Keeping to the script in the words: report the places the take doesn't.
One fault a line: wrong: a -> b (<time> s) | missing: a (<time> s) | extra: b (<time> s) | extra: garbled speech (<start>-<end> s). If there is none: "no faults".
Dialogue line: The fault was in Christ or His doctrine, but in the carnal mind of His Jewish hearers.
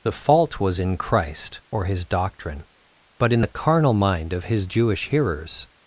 no faults